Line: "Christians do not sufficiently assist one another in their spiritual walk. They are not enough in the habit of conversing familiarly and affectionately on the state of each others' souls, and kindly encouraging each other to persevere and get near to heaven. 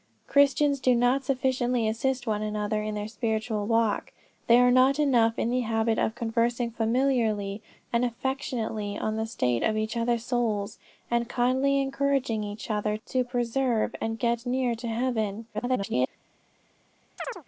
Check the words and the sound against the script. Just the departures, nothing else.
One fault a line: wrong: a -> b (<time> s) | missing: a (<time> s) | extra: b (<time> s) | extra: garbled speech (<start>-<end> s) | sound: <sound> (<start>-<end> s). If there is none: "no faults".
extra: garbled speech (15.5-16.1 s)
sound: chirp (17.2-17.4 s)